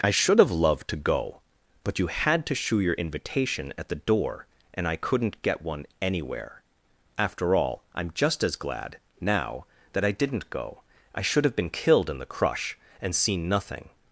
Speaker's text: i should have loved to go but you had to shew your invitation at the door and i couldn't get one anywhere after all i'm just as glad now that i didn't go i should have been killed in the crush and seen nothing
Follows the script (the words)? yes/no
yes